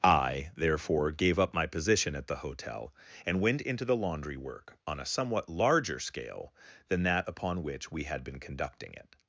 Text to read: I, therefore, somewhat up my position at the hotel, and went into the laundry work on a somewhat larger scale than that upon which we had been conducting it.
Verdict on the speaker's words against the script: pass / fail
fail